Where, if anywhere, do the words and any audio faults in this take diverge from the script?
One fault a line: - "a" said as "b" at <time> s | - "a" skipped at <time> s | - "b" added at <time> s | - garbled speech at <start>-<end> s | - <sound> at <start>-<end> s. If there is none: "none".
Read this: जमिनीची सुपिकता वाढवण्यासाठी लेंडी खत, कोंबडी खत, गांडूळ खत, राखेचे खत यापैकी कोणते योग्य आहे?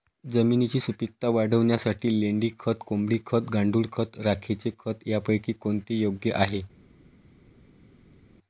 none